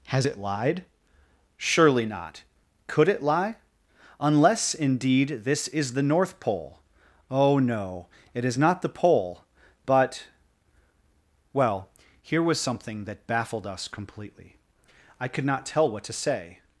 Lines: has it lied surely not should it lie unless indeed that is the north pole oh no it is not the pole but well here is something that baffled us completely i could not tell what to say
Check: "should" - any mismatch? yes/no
yes